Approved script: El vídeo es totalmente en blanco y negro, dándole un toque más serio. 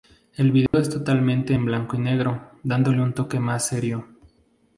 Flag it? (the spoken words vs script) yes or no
no